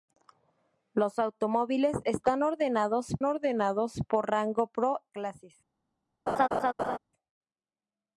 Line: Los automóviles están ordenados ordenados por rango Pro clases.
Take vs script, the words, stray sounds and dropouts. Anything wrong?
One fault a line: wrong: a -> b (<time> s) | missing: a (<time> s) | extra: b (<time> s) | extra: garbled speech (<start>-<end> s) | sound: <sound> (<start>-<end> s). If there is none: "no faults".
sound: laugh (6.3-7.0 s)